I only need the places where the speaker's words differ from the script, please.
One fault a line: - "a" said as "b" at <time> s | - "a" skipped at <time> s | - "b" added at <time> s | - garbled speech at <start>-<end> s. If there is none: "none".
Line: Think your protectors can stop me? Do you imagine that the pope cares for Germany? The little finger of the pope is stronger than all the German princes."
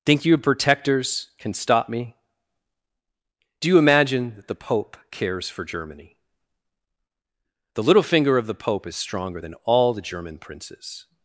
none